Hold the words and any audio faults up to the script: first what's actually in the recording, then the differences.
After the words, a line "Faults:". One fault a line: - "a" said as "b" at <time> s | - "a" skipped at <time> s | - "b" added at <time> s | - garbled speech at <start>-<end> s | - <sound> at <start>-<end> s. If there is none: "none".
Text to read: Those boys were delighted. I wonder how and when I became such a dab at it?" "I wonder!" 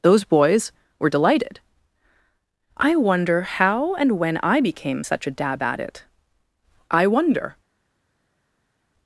Those boys were delighted. I wonder how and when I became such a dab at it?" "I wonder!"
Faults:
none